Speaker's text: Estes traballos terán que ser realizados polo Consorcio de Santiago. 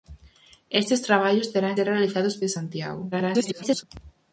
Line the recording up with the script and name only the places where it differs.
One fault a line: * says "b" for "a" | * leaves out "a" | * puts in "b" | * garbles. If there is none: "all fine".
* leaves out "que"
* leaves out "polo Consorcio"
* garbles